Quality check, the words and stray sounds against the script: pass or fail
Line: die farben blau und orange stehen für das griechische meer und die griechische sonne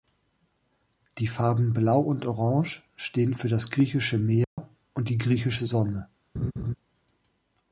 fail